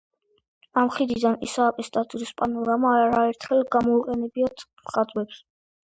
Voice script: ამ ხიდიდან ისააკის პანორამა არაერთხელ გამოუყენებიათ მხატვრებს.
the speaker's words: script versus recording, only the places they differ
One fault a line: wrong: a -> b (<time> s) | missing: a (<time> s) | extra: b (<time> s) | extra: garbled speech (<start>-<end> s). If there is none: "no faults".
extra: ტაძრის (2.0 s)